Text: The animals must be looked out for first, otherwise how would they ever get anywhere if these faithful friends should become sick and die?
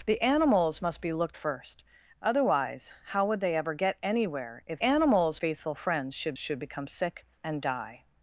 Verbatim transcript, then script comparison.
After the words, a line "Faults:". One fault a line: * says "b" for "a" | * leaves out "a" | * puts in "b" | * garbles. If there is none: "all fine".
The animals must be looked first, otherwise how would they ever get anywhere if animals faithful friends should should become sick and die?
Faults:
* leaves out "out for"
* says "animals" for "these"
* puts in "should"